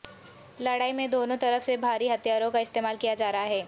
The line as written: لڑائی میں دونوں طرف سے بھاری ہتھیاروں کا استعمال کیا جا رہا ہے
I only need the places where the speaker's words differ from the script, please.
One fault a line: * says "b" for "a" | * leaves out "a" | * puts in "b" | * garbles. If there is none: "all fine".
all fine